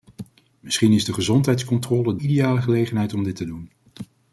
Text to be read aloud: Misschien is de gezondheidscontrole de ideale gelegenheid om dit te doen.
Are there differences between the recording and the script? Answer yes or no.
yes